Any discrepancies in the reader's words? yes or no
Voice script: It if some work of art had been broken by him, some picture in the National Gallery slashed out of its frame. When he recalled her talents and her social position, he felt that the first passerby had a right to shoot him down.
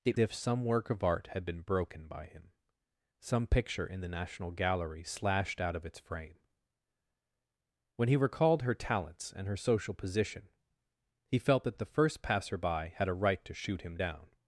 no